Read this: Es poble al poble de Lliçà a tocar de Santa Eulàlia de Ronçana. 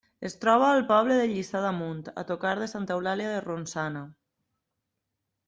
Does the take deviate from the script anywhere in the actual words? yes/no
yes